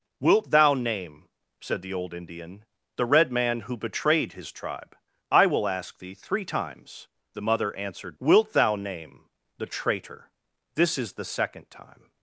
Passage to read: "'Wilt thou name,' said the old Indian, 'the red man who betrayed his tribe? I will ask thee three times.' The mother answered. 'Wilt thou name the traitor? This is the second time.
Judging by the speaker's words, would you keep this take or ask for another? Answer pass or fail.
pass